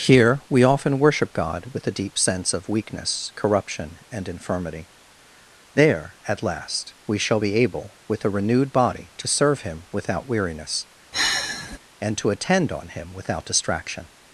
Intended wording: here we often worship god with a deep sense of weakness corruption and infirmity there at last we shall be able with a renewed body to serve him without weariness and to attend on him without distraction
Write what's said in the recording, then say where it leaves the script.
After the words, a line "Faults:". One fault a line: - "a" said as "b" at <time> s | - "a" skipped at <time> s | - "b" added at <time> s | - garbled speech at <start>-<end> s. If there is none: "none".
here we often worship god with a deep sense of weakness corruption and infirmity there at last we shall be able with a renewed body to serve him without weariness and to attend on him without distraction
Faults:
none